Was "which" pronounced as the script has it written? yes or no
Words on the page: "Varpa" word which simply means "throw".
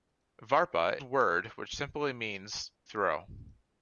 yes